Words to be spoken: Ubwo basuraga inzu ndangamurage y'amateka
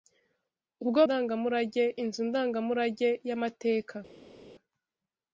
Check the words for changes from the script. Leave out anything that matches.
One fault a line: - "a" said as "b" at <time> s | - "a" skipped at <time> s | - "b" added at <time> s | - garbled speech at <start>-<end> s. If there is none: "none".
- "basuraga" said as "ndangamurage" at 1.0 s